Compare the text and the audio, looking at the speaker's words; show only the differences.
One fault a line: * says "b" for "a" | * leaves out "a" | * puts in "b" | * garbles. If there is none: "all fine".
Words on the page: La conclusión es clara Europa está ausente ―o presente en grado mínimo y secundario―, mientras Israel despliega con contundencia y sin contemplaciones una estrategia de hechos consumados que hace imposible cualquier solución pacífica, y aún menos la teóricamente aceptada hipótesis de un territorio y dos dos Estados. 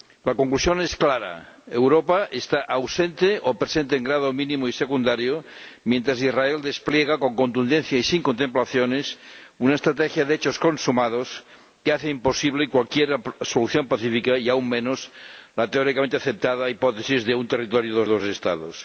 all fine